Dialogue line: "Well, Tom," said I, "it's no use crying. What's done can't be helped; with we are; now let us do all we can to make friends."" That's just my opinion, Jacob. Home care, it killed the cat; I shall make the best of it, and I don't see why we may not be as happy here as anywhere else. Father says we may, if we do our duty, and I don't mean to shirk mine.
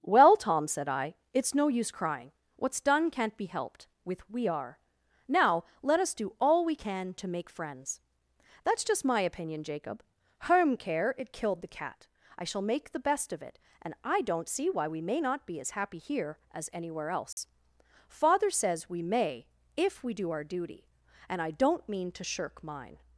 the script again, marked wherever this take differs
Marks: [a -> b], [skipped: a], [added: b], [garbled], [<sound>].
"Well, Tom," said I, "it's no use crying. What's done can't be helped; with we are; now let us do all we can to make friends."" That's just my opinion, Jacob. Home care, it killed the cat; I shall make the best of it, and I don't see why we may not be as happy here as anywhere else. [dropout] Father says we may, if we do our duty, and I don't mean to shirk mine.